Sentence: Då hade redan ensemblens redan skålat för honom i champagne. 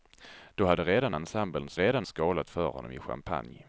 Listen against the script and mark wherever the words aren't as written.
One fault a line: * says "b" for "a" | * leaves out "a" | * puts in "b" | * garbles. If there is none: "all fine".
all fine